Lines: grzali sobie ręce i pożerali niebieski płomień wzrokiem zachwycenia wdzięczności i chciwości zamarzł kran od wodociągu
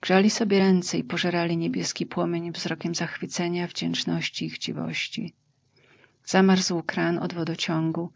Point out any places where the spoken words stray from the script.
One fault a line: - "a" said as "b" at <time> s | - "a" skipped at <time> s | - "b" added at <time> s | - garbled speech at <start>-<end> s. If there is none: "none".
none